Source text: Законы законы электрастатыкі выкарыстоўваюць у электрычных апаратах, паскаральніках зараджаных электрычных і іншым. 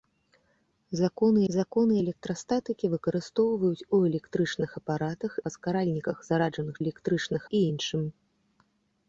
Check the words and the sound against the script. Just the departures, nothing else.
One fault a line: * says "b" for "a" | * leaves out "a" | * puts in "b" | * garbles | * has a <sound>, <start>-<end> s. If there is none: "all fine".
all fine